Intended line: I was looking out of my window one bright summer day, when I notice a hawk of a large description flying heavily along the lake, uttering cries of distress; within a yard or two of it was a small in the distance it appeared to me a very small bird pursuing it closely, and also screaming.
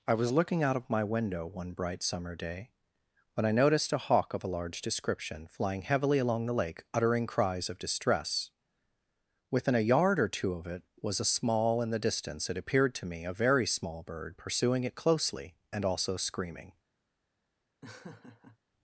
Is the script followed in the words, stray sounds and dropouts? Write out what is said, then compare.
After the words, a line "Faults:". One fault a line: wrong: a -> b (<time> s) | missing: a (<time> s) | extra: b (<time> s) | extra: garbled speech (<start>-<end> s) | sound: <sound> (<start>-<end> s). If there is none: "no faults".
I was looking out of my window one bright summer day, when I noticed a hawk of a large description flying heavily along the lake, uttering cries of distress; within a yard or two of it was a small in the distance it appeared to me a very small bird pursuing it closely, and also screaming.
Faults:
wrong: notice -> noticed (3.5 s)
sound: laugh (17.8-18.6 s)